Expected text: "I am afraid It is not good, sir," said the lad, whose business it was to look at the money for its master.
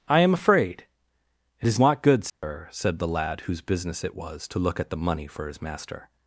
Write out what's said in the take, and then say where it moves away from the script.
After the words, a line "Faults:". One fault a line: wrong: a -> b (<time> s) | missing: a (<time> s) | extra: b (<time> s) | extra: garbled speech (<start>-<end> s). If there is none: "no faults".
"I am afraid It is not good, sir," said the lad, whose business it was to look at the money for his master.
Faults:
wrong: its -> his (5.5 s)